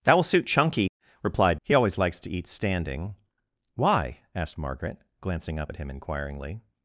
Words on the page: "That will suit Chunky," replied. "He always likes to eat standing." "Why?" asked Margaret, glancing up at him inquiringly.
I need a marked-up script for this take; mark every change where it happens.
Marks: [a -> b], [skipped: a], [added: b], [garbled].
"That will suit Chunky," replied. "He always likes to eat standing." "Why?" asked Margaret, glancing up at him inquiringly.